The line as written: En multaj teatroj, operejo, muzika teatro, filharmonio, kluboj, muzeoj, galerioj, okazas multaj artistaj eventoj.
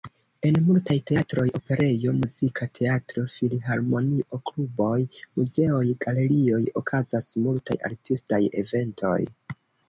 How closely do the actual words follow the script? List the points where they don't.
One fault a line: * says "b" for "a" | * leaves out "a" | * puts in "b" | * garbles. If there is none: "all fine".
all fine